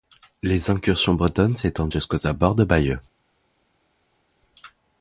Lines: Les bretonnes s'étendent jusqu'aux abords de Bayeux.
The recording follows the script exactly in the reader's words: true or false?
false